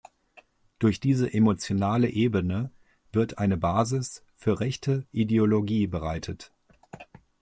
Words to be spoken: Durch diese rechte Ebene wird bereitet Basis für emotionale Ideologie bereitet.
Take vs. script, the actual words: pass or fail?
fail